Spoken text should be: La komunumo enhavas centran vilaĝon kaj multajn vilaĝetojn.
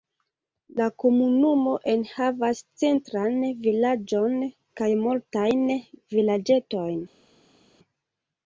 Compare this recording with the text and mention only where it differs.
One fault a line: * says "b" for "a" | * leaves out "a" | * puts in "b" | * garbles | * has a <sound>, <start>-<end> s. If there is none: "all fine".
all fine